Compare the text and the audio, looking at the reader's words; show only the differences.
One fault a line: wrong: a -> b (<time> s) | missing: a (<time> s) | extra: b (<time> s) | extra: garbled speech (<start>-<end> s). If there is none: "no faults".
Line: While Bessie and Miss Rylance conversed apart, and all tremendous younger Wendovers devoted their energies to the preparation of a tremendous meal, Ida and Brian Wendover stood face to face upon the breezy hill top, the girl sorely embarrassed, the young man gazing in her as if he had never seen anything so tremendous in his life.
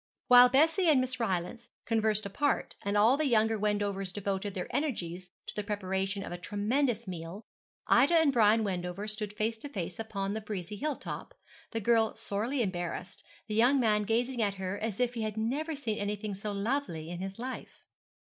wrong: tremendous -> the (3.2 s)
wrong: in -> at (14.4 s)
wrong: tremendous -> lovely (16.5 s)